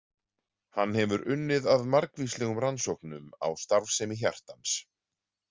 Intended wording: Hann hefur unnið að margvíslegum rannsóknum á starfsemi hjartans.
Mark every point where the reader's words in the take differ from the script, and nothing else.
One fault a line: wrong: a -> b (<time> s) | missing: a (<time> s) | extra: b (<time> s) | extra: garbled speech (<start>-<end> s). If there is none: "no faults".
no faults